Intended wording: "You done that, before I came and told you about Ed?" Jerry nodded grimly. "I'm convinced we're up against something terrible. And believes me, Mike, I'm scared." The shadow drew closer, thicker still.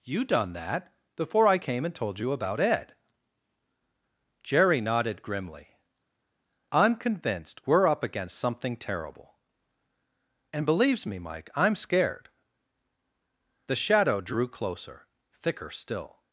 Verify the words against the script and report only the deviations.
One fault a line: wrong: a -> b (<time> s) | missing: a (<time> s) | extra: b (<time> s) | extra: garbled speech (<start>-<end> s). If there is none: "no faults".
no faults